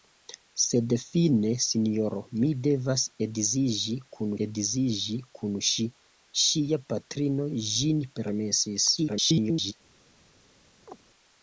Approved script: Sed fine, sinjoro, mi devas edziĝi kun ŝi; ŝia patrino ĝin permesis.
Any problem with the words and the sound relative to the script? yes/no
yes